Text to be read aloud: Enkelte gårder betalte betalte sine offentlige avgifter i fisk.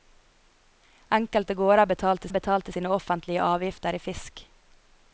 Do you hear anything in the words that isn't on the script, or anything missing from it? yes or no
no